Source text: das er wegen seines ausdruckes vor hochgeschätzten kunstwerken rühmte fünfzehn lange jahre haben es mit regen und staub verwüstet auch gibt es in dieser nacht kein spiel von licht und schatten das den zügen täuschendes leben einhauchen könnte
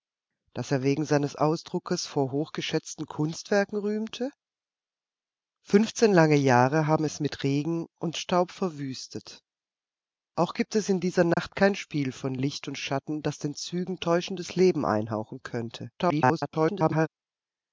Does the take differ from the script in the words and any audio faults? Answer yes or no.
yes